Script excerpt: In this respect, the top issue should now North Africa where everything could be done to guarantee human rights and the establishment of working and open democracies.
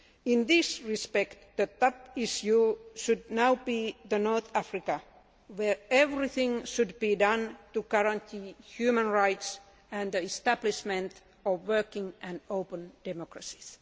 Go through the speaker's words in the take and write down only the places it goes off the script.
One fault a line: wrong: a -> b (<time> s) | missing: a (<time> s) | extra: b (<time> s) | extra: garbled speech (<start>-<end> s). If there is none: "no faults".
extra: be (3.6 s)
wrong: could -> should (6.7 s)